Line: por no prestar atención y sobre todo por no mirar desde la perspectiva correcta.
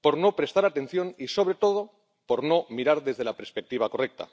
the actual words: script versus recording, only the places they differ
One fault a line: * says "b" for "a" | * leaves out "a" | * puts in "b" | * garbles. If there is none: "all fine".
all fine